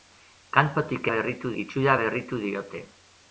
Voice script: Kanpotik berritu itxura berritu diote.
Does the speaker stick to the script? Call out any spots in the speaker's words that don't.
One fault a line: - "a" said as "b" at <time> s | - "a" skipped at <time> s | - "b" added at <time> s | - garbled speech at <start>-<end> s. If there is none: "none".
none